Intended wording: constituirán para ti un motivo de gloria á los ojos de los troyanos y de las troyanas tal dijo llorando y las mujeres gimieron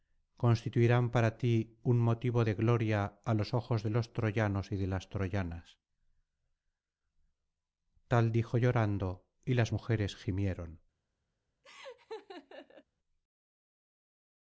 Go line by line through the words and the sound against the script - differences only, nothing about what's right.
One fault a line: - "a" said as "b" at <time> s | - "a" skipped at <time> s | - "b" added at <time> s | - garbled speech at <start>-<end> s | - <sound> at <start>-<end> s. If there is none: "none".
- laugh at 11.6-12.8 s